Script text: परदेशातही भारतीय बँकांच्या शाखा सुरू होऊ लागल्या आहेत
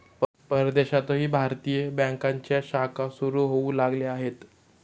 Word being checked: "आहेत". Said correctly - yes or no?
yes